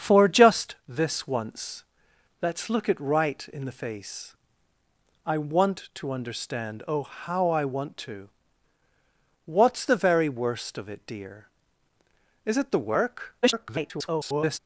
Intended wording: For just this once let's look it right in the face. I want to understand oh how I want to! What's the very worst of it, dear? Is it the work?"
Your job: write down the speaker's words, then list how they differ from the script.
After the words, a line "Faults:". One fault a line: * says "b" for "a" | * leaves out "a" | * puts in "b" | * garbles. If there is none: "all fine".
For just this once let's look it right in the face. I want to understand oh how I want to! What's the very worst of it, dear? Is it the work?" [garbled]
Faults:
* garbles